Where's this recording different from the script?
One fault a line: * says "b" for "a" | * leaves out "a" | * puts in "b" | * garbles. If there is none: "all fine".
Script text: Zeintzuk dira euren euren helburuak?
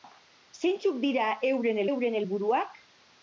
all fine